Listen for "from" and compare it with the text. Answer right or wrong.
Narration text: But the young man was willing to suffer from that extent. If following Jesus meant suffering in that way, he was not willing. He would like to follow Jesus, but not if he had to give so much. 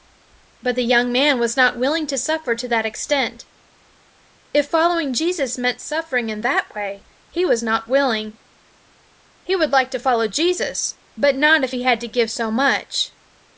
wrong